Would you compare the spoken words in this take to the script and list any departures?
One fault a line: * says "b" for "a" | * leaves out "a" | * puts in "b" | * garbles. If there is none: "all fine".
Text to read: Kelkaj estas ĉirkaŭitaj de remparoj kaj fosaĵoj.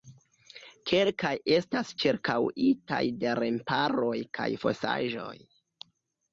all fine